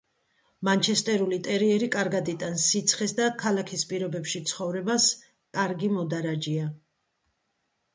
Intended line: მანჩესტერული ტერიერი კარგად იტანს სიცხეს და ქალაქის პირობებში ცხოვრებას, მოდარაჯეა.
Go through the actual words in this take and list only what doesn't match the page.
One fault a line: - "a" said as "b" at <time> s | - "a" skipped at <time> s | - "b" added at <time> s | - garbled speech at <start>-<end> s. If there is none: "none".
- "კარგი" added at 5.6 s